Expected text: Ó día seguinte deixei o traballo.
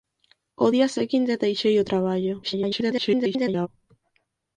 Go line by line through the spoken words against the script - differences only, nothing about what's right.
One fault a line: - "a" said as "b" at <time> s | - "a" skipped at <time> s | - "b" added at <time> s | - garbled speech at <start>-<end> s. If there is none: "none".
- garbled speech at 2.4-3.7 s